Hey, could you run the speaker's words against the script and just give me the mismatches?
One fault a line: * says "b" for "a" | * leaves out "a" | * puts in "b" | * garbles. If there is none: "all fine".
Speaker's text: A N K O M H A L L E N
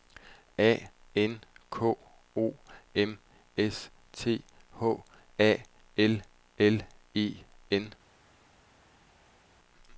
* puts in "S T"